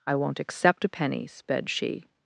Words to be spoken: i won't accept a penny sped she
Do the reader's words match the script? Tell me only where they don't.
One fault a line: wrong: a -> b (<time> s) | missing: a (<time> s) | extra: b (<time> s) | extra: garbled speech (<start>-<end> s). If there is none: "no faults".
no faults